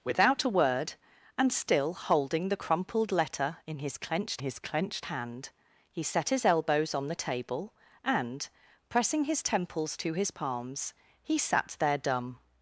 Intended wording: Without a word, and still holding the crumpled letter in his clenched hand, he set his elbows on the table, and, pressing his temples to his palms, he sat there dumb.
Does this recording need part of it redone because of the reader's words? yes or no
yes